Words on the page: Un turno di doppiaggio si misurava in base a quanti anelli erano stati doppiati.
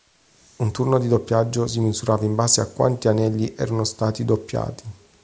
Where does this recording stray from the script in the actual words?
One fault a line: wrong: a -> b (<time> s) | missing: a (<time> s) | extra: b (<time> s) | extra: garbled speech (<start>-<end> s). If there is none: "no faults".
no faults